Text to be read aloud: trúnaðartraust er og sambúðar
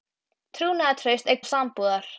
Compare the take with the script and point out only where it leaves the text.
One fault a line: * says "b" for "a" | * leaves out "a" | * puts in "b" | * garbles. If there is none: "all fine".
all fine